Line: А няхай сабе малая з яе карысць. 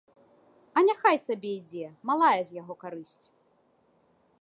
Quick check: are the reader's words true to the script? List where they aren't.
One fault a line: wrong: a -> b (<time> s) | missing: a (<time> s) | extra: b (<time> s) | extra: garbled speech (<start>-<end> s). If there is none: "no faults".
extra: ідзе (1.6 s)
wrong: яе -> яго (2.6 s)